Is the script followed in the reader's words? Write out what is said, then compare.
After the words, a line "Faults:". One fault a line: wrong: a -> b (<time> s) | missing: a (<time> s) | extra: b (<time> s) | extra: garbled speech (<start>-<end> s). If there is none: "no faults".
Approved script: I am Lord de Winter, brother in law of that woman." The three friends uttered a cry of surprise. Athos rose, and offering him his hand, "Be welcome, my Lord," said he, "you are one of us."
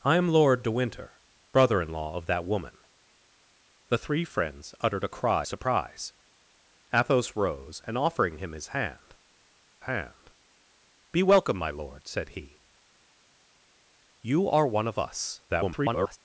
I am Lord de Winter, brother in law of that woman." The three friends uttered a cry surprise. Athos rose, and offering him his hand hand, "Be welcome, my Lord," said he, "you are one of us." [garbled]
Faults:
missing: of (5.5 s)
extra: hand (9.8 s)
extra: garbled speech (15.5-16.2 s)